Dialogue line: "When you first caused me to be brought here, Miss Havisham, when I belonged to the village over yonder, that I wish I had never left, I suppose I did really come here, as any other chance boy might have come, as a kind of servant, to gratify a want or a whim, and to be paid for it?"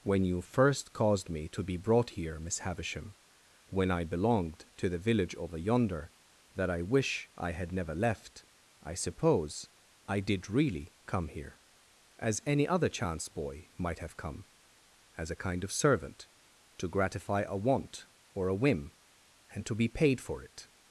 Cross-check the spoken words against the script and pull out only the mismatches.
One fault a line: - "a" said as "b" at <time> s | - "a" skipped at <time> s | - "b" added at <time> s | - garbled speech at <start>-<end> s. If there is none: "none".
none